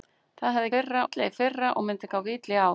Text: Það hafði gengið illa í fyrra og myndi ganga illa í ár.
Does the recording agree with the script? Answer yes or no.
no